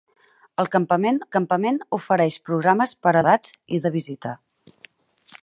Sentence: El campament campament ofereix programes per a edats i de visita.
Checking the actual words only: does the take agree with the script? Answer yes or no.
yes